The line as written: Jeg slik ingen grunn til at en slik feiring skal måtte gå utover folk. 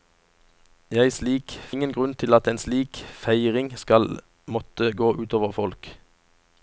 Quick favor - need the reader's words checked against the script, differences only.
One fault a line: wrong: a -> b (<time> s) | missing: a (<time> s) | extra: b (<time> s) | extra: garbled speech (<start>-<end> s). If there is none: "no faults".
no faults